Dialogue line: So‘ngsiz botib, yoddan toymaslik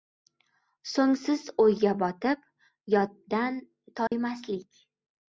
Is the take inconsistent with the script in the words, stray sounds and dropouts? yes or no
yes